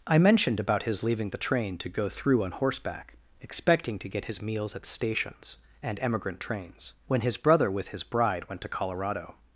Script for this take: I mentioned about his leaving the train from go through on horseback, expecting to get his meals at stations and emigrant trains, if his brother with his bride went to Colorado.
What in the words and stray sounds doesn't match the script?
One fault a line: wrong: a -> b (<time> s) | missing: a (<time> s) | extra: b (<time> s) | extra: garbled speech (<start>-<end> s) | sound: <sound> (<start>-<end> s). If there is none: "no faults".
wrong: from -> to (1.8 s)
wrong: if -> when (7.1 s)